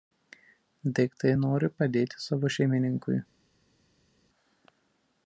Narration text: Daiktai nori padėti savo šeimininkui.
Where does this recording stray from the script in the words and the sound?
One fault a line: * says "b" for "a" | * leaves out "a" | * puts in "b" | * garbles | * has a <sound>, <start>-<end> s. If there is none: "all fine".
all fine